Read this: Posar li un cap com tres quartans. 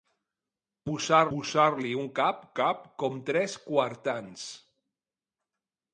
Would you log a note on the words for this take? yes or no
yes